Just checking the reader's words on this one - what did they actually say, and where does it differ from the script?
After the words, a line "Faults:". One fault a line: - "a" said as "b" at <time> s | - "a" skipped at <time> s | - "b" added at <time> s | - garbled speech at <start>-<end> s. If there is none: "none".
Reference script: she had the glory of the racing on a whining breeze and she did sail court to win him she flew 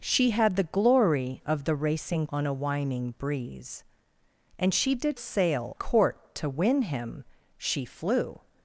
she had the glory of the racing on a whining breeze and she did sail court to win him she flew
Faults:
none